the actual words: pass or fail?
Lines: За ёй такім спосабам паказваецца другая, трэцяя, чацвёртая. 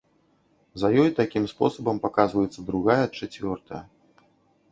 fail